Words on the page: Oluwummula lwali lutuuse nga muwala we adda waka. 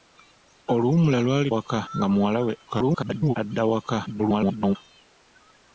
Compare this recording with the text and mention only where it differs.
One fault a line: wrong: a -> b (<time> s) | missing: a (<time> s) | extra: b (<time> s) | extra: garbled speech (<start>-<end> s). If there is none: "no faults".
wrong: lutuuse -> waka (1.5 s)
extra: garbled speech (2.7-3.4 s)
extra: garbled speech (4.1-4.8 s)